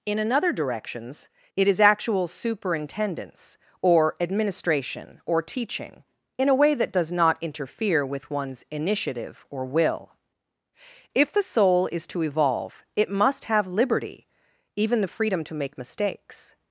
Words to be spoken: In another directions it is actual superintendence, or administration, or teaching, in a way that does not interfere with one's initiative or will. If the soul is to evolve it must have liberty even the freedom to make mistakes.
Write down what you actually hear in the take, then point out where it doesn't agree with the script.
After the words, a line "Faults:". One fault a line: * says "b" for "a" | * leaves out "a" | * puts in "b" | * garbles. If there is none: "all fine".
In another directions it is actual superintendence, or administration, or teaching, in a way that does not interfere with one's initiative or will. If the soul is to evolve it must have liberty even the freedom to make mistakes.
Faults:
all fine